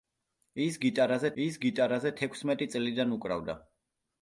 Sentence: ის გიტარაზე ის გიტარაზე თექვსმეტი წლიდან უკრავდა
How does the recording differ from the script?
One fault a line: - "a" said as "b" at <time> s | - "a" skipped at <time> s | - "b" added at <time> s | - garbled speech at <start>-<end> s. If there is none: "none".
none